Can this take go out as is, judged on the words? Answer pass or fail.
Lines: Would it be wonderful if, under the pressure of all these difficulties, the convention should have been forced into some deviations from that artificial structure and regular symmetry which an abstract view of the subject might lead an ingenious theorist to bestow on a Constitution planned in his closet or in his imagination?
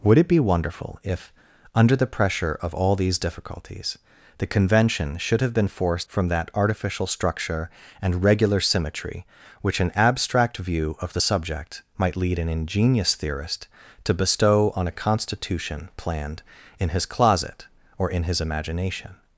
fail